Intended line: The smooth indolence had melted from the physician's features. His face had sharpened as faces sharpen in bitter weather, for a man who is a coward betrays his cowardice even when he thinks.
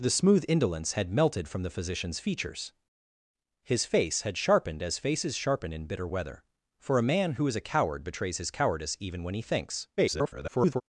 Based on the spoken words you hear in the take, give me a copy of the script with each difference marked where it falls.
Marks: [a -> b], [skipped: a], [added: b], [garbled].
The smooth indolence had melted from the physician's features. His face had sharpened as faces sharpen in bitter weather, for a man who is a coward betrays his cowardice even when he thinks. [garbled]